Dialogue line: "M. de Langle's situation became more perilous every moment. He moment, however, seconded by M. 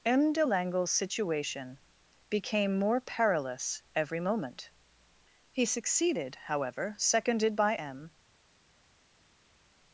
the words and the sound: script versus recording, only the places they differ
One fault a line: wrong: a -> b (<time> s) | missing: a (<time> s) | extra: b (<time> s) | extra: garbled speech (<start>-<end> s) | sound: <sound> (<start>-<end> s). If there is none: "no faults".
wrong: moment -> succeeded (5.7 s)